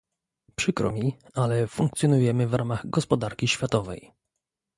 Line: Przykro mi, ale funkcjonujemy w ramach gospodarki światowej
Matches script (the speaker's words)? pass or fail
pass